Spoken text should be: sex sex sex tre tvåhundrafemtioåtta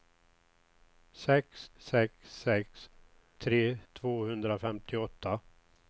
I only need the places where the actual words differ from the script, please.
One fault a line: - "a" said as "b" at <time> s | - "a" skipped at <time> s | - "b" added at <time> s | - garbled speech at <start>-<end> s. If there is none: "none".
none